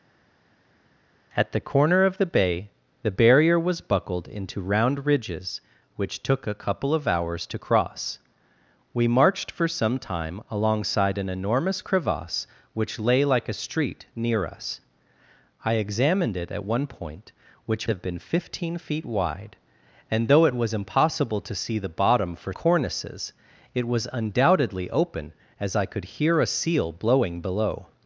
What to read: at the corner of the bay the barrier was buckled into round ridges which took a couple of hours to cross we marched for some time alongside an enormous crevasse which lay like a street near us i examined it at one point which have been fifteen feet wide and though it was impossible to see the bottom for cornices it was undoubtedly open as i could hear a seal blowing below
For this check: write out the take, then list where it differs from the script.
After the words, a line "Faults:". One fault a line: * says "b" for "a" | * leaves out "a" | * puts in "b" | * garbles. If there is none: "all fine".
at the corner of the bay the barrier was buckled into round ridges which took a couple of hours to cross we marched for some time alongside an enormous crevasse which lay like a street near us i examined it at one point which have been fifteen feet wide and though it was impossible to see the bottom for cornices it was undoubtedly open as i could hear a seal blowing below
Faults:
all fine